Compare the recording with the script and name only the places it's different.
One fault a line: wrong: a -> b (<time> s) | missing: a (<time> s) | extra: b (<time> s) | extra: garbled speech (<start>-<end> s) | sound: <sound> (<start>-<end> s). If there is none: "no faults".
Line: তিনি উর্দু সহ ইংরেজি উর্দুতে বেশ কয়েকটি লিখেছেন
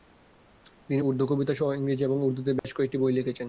extra: কবিতা (1.3 s)
extra: এবং (2.0 s)
sound: dropout (2.6-2.6 s)
extra: বই (3.0 s)